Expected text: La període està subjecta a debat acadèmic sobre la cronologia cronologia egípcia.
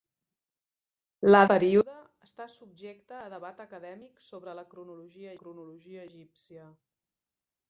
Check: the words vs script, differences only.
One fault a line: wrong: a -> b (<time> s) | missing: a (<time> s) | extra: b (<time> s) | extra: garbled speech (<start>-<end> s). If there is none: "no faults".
no faults